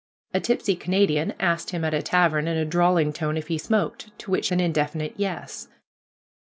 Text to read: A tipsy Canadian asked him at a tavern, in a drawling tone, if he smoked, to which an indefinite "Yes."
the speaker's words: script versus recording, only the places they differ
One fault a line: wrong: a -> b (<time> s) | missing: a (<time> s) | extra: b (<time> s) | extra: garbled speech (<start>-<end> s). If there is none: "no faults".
no faults